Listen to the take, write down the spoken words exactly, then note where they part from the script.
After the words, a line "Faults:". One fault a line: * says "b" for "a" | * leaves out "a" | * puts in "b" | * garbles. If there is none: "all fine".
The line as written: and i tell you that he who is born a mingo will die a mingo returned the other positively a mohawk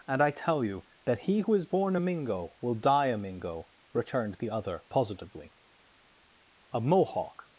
and i tell you that he who is born a mingo will die a mingo returned the other positively a mohawk
Faults:
all fine